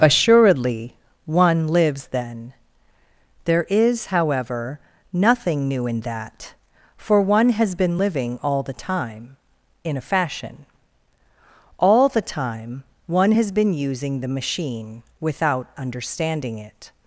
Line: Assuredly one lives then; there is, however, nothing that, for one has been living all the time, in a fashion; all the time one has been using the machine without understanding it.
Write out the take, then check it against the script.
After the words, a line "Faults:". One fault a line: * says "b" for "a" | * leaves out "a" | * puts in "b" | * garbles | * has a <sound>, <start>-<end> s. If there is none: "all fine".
Assuredly one lives then; there is, however, nothing new in that, for one has been living all the time, in a fashion; all the time one has been using the machine without understanding it.
Faults:
* puts in "new in"